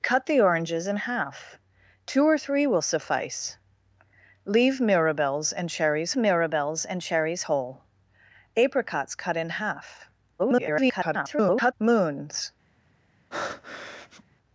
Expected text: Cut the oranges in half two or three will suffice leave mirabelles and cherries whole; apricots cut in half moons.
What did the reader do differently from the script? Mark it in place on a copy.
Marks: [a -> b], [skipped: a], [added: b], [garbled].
Cut the oranges in half two or three will suffice leave mirabelles and cherries [added: mirabelles and cherries] whole; apricots cut in half [garbled] moons.